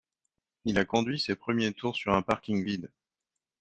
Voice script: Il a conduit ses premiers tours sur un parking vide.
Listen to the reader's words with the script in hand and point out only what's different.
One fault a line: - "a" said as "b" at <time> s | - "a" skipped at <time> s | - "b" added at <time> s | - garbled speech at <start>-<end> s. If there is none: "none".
none